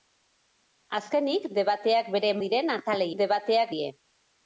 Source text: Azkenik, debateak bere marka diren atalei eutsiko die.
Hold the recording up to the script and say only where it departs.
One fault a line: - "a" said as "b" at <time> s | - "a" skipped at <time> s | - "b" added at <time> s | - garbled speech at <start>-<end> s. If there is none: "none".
- "marka" skipped at 2.3 s
- "eutsiko" said as "debateak" at 3.2 s